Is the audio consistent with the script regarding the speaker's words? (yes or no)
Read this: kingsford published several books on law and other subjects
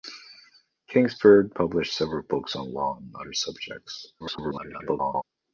no